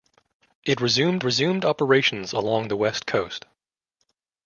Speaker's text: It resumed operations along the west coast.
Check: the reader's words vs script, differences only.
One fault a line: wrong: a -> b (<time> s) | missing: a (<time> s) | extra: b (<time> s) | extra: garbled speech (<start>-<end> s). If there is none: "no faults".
extra: resumed (1.2 s)